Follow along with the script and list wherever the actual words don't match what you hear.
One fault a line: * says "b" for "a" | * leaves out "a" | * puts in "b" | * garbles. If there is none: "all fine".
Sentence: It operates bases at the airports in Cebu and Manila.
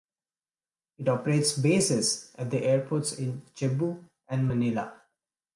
all fine